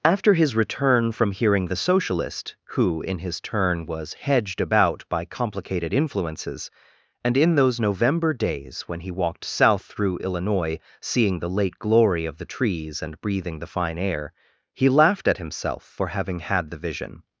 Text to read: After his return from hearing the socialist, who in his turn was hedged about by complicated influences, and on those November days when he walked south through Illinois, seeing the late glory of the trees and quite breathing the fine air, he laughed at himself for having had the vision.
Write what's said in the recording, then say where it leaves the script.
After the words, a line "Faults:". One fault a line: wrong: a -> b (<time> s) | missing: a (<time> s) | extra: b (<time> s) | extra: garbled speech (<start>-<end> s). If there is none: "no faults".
After his return from hearing the socialist, who in his turn was hedged about by complicated influences, and in those November days when he walked south through Illinois, seeing the late glory of the trees and breathing the fine air, he laughed at himself for having had the vision.
Faults:
wrong: on -> in (7.4 s)
missing: quite (13.2 s)